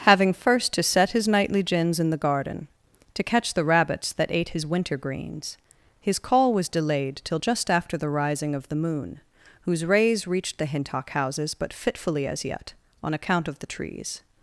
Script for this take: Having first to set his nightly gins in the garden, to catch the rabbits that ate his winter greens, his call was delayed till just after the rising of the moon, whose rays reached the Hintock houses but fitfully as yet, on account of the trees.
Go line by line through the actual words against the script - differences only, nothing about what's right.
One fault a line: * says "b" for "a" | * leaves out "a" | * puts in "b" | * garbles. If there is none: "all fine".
all fine